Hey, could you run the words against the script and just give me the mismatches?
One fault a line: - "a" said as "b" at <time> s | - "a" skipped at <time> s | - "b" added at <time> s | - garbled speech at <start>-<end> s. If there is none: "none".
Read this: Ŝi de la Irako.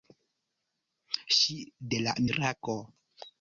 none